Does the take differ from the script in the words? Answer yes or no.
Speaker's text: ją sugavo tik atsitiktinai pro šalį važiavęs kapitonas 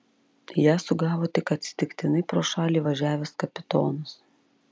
no